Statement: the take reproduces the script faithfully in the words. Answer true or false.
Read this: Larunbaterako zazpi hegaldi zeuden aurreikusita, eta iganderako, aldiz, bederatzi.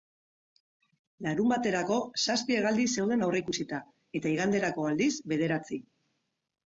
true